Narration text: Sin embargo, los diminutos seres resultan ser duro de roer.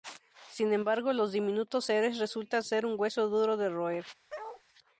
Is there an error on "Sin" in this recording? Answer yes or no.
no